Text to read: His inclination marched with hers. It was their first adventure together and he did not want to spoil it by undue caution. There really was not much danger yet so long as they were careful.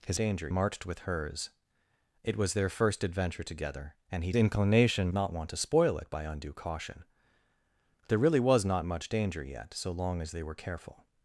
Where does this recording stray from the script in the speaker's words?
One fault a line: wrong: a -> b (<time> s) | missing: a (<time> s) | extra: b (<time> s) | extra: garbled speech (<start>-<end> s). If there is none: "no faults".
wrong: inclination -> danger (0.1 s)
wrong: did -> inclination (4.4 s)